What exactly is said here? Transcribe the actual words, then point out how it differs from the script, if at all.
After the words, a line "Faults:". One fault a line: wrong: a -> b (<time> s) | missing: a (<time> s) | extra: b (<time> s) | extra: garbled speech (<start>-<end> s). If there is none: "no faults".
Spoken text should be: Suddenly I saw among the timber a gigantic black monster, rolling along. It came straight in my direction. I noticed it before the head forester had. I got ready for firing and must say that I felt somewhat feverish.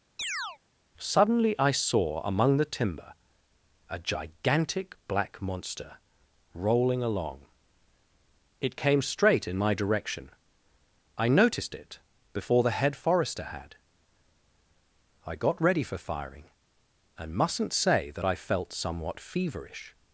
Suddenly I saw among the timber a gigantic black monster, rolling along. It came straight in my direction. I noticed it before the head forester had. I got ready for firing and mustn't say that I felt somewhat feverish.
Faults:
wrong: must -> mustn't (17.3 s)